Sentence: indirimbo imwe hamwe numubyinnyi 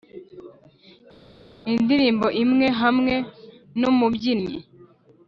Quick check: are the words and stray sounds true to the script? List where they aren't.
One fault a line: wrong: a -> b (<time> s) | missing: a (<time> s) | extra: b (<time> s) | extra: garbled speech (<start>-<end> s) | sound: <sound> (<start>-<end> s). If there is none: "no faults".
no faults